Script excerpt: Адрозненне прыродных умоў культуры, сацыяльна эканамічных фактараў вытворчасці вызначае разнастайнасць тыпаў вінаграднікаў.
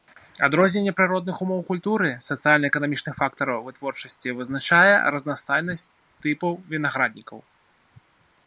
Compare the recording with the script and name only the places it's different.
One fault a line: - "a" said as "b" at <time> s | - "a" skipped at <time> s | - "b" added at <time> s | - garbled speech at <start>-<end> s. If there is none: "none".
none